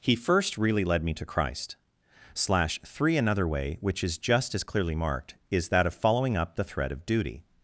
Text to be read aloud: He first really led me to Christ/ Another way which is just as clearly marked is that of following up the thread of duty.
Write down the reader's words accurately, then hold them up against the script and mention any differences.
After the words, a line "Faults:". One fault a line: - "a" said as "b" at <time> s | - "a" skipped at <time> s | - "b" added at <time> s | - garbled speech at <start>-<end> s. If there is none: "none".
He first really led me to Christ/ slash three Another way which is just as clearly marked is that of following up the thread of duty.
Faults:
- "slash three" added at 2.3 s